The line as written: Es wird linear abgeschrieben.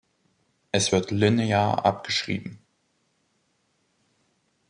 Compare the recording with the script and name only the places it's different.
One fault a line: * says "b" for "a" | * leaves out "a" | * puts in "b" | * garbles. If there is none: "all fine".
all fine